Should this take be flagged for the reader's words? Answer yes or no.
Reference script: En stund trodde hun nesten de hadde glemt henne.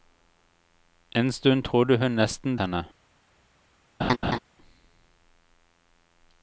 yes